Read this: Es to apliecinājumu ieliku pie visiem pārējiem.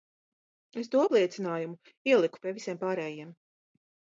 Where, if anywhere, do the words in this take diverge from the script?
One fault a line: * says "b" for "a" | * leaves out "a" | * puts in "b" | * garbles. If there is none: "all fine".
all fine